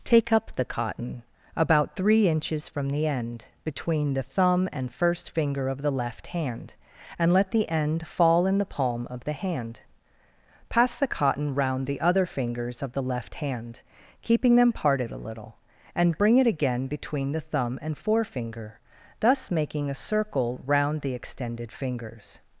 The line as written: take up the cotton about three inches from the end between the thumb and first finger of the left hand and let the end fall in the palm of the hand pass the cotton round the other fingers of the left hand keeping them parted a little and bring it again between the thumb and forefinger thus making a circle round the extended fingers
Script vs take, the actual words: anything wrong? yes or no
no